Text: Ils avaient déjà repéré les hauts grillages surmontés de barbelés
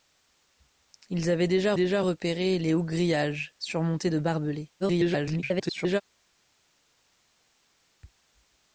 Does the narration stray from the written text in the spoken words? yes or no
yes